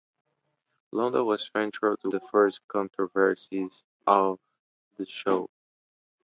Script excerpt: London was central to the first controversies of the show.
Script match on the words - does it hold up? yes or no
yes